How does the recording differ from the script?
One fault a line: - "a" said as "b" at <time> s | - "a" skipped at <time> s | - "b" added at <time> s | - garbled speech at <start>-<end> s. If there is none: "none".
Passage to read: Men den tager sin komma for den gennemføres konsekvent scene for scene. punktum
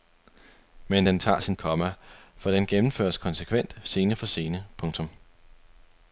none